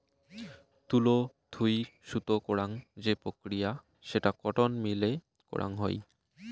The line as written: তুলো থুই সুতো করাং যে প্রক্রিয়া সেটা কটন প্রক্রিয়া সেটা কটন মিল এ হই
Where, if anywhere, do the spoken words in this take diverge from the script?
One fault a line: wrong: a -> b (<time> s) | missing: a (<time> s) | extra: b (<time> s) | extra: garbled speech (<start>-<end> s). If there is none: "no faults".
missing: প্রক্রিয়া সেটা কটন (4.7 s)
extra: করাং (5.5 s)